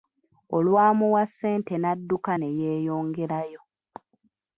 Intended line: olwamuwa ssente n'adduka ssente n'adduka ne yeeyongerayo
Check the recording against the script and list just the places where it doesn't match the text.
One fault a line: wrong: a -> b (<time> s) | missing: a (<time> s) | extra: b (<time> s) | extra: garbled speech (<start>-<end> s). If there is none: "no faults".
missing: ssente n'adduka (2.3 s)